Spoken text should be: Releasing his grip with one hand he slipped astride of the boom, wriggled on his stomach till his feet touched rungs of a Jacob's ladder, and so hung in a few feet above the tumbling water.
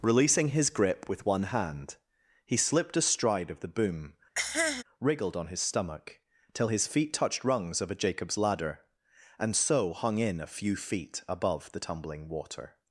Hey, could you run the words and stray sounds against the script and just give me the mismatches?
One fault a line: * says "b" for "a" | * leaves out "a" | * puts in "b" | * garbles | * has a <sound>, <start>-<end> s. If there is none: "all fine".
* has a cough, 4.4-4.8 s